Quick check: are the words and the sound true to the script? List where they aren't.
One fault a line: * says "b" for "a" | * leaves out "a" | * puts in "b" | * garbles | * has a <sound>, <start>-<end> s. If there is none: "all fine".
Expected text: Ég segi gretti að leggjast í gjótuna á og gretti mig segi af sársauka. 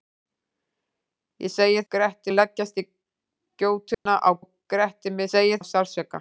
* has a dropout, 3.9-4.1 s